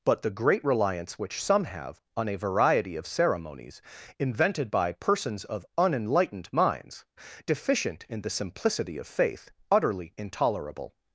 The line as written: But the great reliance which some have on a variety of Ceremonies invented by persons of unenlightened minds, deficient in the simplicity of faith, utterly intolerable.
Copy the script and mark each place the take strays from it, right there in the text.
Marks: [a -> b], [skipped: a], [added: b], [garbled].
But the great reliance which some have on a variety of Ceremonies invented by persons of unenlightened minds, deficient in the simplicity of faith, utterly intolerable.